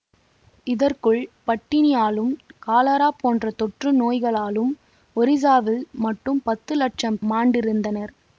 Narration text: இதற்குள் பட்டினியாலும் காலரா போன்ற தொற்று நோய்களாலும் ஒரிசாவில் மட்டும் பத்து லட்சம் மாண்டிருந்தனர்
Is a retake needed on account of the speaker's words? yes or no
no